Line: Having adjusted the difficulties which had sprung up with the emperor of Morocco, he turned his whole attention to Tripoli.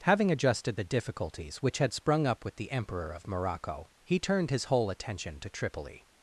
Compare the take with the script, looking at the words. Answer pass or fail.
pass